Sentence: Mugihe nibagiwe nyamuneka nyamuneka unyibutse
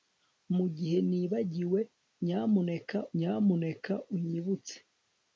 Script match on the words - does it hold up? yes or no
yes